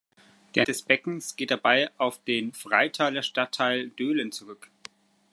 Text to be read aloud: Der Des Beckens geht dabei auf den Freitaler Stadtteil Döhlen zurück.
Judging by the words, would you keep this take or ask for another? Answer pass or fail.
pass